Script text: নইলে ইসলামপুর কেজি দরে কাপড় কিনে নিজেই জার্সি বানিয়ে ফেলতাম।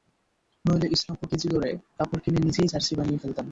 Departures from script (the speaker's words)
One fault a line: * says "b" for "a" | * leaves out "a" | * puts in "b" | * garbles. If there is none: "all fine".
all fine